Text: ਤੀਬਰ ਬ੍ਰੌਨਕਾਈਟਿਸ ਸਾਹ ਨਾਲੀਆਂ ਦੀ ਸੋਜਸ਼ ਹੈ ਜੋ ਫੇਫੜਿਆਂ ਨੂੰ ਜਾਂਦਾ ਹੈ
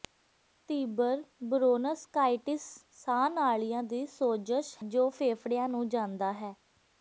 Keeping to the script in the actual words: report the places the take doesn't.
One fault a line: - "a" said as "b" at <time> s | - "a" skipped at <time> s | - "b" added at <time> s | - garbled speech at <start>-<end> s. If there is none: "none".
- "ਹੈ" skipped at 4.8 s